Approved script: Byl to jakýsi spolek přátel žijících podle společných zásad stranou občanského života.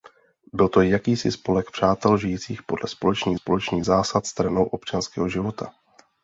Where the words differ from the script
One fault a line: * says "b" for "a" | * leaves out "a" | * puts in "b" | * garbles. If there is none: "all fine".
* puts in "společných"